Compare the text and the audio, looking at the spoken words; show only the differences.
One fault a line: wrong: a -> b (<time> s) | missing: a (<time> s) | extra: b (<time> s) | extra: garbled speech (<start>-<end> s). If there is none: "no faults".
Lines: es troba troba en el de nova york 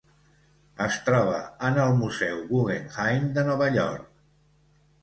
missing: troba (1.4 s)
extra: museu guggenheim (2.0 s)